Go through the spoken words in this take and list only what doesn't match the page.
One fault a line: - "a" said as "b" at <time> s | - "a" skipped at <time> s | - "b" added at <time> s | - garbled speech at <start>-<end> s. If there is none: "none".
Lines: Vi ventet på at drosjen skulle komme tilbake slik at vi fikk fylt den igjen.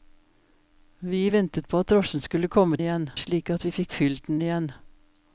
- "tilbake" said as "igjen" at 2.8 s